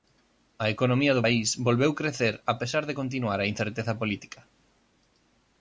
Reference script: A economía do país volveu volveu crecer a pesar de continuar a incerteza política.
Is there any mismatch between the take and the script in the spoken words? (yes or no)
yes